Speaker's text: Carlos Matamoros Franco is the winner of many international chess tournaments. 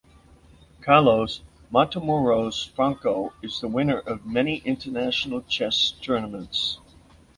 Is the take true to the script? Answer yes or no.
yes